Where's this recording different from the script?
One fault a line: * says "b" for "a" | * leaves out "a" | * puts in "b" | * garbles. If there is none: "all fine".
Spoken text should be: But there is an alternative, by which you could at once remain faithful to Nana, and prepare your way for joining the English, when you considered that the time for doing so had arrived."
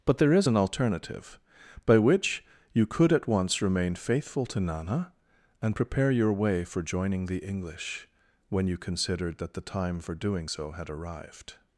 all fine